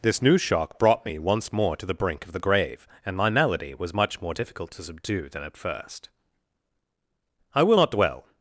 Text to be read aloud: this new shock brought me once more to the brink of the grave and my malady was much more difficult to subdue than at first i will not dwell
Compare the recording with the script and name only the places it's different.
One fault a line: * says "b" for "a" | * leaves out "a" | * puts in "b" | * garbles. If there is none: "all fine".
all fine